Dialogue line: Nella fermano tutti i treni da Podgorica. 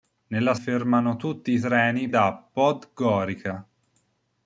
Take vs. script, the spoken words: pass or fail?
pass